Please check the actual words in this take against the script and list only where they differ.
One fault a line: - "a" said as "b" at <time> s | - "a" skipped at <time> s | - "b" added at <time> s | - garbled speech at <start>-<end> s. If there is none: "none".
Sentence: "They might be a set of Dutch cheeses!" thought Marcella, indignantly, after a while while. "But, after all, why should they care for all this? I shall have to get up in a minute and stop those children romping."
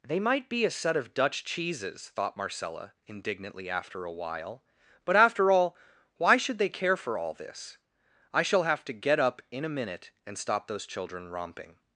- "while" skipped at 4.6 s